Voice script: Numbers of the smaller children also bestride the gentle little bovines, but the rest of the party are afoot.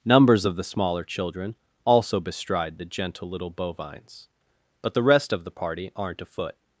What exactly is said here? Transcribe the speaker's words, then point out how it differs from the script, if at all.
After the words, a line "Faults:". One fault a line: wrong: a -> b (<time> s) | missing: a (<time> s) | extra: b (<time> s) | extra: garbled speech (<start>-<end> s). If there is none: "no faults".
Numbers of the smaller children also bestride the gentle little bovines, but the rest of the party aren't afoot.
Faults:
wrong: are -> aren't (6.0 s)